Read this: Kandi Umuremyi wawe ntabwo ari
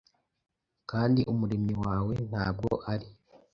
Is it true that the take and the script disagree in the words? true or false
false